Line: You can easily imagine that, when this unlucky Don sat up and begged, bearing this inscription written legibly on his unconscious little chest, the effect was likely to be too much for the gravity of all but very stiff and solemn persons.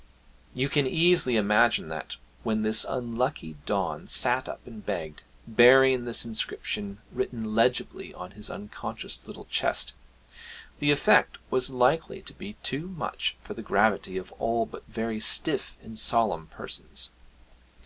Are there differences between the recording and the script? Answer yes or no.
no